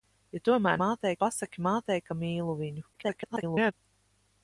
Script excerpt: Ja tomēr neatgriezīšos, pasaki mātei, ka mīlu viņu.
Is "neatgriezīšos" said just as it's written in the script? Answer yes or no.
no